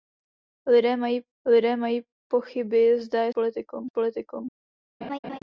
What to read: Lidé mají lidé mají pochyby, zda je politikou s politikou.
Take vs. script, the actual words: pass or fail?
pass